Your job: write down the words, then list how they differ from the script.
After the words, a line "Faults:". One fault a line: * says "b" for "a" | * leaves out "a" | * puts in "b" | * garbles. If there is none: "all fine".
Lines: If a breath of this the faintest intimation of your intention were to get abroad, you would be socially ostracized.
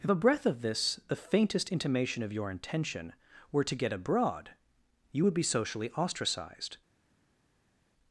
If a breath of this the faintest intimation of your intention were to get abroad, you would be socially ostracized.
Faults:
all fine